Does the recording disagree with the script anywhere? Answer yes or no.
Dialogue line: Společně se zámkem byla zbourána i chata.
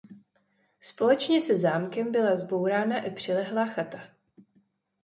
yes